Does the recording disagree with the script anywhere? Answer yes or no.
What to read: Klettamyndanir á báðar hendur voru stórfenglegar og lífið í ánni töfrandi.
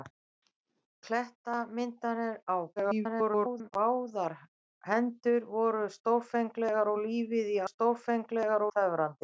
yes